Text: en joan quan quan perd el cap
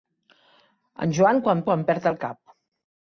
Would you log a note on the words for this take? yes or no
no